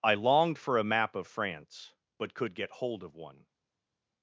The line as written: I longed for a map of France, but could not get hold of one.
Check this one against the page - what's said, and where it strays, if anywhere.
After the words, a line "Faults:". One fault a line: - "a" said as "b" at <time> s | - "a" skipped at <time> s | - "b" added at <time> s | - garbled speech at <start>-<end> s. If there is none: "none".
I longed for a map of France, but could get hold of one.
Faults:
- "not" skipped at 2.5 s